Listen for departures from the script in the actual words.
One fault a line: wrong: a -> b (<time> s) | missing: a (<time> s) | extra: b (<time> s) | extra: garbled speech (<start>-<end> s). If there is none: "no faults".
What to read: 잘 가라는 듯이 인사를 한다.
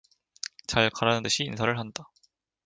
no faults